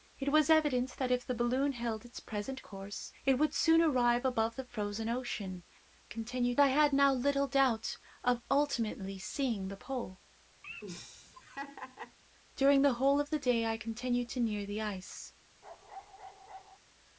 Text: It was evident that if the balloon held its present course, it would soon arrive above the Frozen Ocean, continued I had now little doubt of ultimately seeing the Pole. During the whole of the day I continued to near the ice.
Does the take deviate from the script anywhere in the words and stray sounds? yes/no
yes